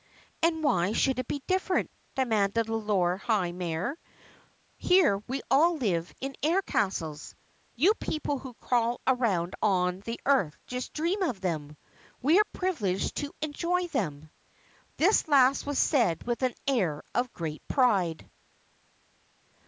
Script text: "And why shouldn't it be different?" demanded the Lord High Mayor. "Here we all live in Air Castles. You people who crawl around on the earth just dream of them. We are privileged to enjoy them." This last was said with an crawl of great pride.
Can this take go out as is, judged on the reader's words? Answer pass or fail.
fail